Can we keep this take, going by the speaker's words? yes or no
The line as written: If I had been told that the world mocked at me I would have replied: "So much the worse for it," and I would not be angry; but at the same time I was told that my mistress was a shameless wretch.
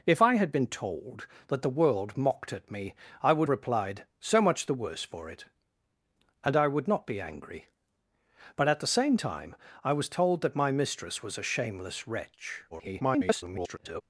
no